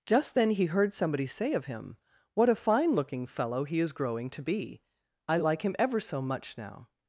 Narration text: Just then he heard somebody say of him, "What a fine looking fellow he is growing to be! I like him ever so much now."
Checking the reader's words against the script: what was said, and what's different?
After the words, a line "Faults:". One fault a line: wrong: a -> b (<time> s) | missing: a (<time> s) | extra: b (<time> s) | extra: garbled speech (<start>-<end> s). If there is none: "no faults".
Just then he heard somebody say of him, "What a fine looking fellow he is growing to be! I like him ever so much now."
Faults:
no faults